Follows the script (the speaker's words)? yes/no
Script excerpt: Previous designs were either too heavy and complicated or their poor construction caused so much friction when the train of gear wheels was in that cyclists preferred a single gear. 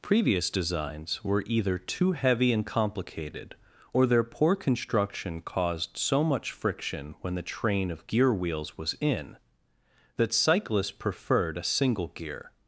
yes